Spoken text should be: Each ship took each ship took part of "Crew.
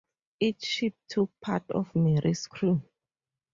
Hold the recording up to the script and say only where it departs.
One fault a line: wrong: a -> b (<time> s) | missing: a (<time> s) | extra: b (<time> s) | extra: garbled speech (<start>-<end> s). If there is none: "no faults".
missing: each ship took (1.3 s)
extra: Mary"s (1.9 s)